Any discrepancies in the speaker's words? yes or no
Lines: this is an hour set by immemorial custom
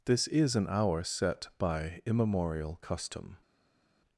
no